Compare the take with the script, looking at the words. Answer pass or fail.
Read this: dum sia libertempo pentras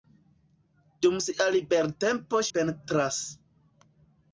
pass